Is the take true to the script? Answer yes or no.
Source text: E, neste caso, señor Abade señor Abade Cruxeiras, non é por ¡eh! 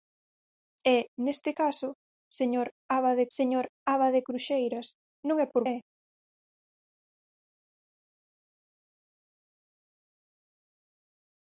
yes